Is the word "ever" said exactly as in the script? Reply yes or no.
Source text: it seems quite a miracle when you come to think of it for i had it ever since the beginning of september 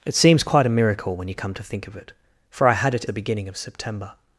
no